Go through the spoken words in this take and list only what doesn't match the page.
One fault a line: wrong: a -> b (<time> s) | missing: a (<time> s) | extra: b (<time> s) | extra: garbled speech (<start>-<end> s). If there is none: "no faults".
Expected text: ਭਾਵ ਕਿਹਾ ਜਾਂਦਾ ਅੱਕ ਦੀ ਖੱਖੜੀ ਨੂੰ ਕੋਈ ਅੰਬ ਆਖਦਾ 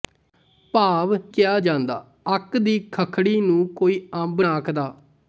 no faults